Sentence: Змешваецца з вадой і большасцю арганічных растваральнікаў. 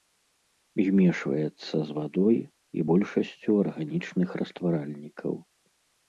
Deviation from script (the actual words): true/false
false